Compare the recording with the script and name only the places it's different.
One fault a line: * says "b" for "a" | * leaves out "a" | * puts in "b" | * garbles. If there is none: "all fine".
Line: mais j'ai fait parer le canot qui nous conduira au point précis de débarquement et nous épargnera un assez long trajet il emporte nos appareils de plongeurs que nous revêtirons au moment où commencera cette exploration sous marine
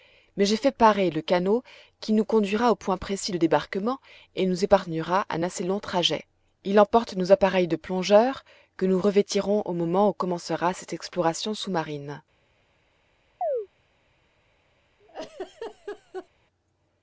all fine